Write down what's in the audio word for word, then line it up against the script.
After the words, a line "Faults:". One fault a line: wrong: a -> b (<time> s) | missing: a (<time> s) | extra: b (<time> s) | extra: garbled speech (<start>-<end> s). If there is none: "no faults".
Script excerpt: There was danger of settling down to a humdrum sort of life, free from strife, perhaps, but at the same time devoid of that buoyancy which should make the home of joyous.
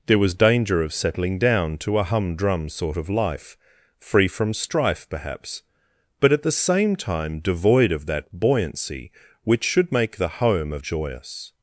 There was danger of settling down to a humdrum sort of life, free from strife, perhaps, but at the same time devoid of that buoyancy which should make the home of joyous.
Faults:
no faults